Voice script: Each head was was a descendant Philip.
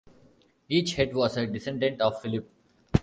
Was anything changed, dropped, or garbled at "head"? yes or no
no